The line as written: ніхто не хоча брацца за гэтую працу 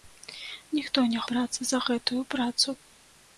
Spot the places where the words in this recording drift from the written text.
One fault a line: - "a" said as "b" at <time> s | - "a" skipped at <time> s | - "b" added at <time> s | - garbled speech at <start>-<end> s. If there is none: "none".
- "хоча" skipped at 1.2 s